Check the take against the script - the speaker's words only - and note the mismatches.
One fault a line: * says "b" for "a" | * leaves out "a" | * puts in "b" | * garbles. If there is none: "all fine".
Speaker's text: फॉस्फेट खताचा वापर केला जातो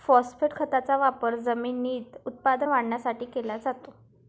* puts in "जमिनीत उत्पादन वाढवण्यासाठी"